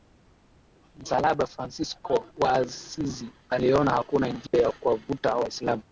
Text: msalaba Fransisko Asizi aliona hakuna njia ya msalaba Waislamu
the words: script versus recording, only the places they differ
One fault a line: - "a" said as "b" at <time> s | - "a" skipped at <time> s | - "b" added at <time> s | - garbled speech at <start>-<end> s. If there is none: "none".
- "wa" added at 2.4 s
- "msalaba" said as "kuwavuta" at 4.7 s